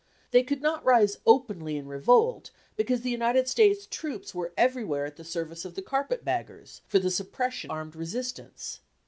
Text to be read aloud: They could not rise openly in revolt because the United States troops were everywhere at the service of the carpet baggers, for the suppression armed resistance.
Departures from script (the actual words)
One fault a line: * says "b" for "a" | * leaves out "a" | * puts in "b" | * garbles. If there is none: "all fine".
all fine